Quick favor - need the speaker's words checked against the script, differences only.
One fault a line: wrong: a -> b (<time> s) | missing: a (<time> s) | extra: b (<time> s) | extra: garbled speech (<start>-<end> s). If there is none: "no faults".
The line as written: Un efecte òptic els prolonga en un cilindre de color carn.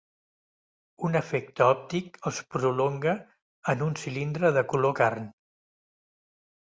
no faults